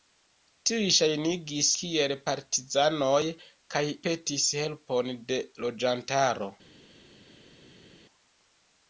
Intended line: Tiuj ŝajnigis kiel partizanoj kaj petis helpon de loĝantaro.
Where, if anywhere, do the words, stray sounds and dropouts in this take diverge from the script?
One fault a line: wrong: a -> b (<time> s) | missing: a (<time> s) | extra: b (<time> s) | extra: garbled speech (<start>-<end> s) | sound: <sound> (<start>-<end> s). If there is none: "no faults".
no faults